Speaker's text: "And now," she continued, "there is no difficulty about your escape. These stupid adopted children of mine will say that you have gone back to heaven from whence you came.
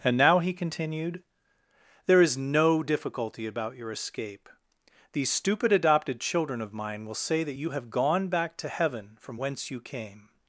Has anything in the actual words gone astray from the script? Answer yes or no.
yes